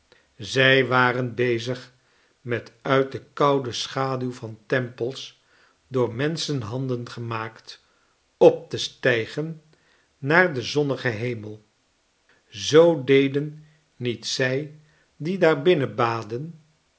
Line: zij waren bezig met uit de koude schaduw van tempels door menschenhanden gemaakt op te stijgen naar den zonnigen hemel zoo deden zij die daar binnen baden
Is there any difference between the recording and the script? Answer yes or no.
yes